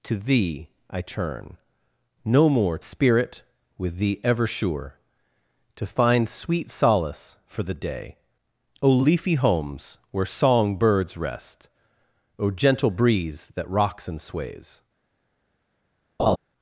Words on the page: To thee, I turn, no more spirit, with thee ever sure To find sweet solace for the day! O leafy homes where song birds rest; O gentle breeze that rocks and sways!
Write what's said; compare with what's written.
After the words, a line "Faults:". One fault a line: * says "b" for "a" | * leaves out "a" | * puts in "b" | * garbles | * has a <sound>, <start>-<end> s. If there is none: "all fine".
To thee, I turn, no more spirit, with thee ever sure To find sweet solace for the day! O leafy homes where song birds rest; O gentle breeze that rocks and sways!
Faults:
* has a laugh, 16.2-16.4 s